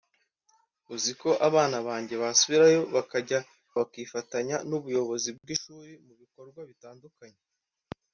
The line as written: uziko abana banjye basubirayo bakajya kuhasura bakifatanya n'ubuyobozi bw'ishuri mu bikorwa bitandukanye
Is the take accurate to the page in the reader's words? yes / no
no